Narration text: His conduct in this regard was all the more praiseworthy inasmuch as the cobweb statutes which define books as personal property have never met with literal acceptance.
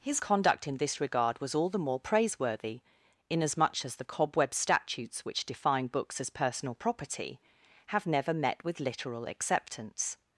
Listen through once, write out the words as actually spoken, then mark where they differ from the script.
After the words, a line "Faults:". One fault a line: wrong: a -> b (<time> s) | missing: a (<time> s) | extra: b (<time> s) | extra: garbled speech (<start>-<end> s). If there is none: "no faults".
His conduct in this regard was all the more praiseworthy inasmuch as the cobweb statutes which define books as personal property have never met with literal acceptance.
Faults:
no faults